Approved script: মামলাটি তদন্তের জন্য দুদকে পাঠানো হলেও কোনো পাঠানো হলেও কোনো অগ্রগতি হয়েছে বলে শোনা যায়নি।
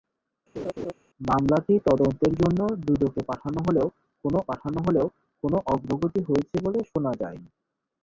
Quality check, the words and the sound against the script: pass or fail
fail